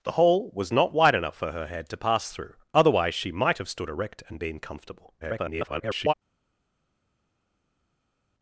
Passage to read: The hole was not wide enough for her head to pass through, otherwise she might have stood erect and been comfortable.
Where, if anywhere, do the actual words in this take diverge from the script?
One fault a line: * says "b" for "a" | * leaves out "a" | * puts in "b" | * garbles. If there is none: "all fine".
* garbles